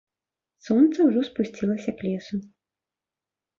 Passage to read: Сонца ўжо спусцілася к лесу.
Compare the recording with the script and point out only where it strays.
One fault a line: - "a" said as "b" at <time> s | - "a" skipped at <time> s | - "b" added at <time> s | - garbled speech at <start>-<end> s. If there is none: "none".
none